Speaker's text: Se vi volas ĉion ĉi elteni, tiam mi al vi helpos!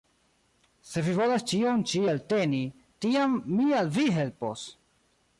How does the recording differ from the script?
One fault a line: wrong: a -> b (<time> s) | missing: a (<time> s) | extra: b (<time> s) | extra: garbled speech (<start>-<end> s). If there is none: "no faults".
no faults